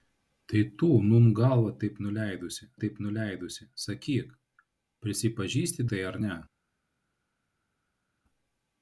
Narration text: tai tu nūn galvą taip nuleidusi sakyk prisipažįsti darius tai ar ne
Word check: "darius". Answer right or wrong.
wrong